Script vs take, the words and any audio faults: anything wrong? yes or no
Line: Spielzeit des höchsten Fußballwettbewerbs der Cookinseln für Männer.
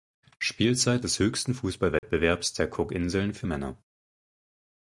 yes